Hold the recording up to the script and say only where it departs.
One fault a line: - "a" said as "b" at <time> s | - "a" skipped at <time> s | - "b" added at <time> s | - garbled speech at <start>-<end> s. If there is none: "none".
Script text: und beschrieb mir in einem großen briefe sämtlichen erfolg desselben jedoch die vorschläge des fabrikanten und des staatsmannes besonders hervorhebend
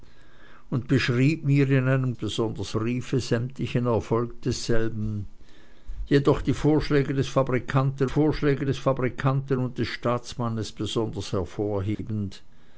- "großen" said as "besonders" at 2.1 s
- "vorschläge des fabrikanten" added at 8.1 s